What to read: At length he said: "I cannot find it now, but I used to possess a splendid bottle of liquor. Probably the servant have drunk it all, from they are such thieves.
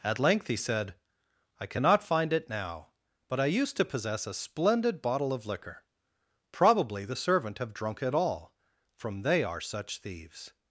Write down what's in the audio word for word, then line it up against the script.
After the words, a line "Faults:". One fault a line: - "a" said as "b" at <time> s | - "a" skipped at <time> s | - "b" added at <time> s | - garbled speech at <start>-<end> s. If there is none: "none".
At length he said: "I cannot find it now, but I used to possess a splendid bottle of liquor. Probably the servant have drunk it all, from they are such thieves.
Faults:
none